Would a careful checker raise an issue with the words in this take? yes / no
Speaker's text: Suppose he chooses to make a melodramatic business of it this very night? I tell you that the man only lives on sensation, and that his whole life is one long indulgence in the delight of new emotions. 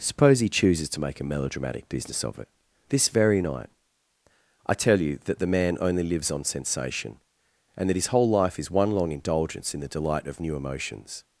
no